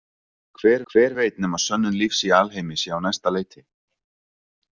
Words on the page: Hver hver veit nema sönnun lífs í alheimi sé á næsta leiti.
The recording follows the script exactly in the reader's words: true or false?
true